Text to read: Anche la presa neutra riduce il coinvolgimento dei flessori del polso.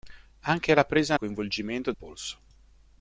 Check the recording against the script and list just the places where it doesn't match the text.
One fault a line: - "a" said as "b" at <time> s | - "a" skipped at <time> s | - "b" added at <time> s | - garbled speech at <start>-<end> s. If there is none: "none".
- "neutra riduce" skipped at 1.1 s
- "dei flessori del" skipped at 1.9 s